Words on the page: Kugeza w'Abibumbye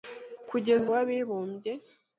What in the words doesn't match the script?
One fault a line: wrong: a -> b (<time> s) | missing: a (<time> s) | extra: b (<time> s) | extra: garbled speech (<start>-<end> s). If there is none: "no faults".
no faults